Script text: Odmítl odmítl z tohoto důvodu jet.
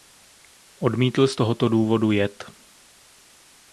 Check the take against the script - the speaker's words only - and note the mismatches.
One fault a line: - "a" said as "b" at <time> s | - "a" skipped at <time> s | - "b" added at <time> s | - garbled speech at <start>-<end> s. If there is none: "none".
- "odmítl" skipped at 1.3 s